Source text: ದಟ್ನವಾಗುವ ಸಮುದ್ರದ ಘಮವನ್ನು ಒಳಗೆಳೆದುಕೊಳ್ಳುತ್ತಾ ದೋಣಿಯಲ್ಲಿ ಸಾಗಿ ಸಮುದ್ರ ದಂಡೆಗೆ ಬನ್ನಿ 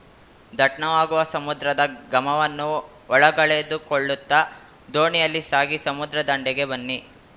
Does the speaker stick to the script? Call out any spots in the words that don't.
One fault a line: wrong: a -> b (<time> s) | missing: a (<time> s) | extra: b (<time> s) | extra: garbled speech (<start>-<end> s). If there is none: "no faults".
no faults